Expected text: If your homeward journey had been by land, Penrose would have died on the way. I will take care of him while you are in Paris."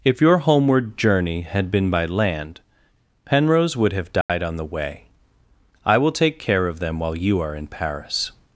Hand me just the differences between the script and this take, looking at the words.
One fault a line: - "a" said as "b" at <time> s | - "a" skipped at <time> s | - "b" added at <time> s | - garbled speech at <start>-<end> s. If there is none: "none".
- "him" said as "them" at 6.8 s